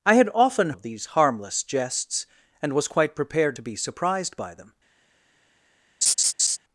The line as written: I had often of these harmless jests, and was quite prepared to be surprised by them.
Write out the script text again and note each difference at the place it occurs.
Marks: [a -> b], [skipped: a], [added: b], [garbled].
I had often of these harmless jests, and was quite prepared to be surprised by them.